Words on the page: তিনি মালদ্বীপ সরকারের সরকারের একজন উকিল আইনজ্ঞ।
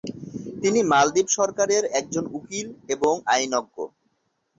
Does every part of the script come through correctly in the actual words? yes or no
no